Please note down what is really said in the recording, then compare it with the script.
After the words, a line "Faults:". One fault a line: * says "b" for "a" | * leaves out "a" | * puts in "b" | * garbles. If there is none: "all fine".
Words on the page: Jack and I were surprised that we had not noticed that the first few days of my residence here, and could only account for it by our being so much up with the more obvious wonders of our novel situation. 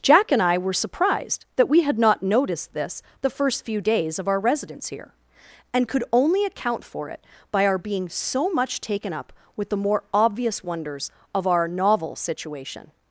Jack and I were surprised that we had not noticed this the first few days of our residence here, and could only account for it by our being so much taken up with the more obvious wonders of our novel situation.
Faults:
* says "this" for "that"
* says "our" for "my"
* puts in "taken"